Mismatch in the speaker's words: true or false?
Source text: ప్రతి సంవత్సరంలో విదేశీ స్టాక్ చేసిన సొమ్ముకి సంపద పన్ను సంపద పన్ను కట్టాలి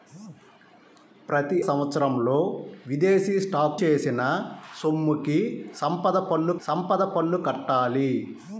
false